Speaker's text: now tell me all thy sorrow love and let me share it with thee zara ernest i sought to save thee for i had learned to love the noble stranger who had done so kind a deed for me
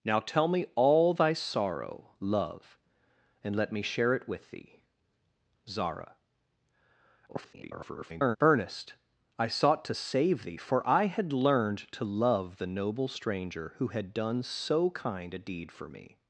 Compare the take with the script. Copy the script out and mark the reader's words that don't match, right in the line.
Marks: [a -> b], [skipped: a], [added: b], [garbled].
now tell me all thy sorrow love and let me share it with thee zara [garbled] ernest i sought to save thee for i had learned to love the noble stranger who had done so kind a deed for me